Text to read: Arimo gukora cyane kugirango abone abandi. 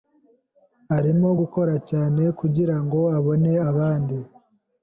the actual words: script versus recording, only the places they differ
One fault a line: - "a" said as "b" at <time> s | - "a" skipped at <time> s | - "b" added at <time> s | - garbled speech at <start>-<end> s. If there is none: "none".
none